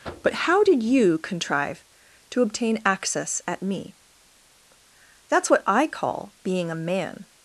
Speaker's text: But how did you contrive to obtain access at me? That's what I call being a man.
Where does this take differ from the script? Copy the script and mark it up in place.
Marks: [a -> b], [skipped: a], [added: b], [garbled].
But how did you contrive to obtain access at me? That's what I call being a man.